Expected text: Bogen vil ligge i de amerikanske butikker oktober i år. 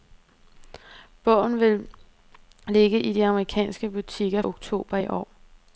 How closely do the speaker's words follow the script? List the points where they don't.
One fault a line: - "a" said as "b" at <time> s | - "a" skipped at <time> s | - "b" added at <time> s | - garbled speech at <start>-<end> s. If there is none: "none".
none